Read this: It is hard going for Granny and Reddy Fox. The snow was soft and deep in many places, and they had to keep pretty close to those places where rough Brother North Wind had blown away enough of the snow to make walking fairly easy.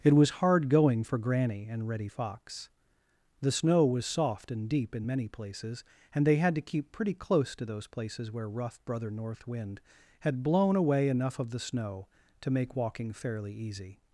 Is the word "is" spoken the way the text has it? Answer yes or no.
no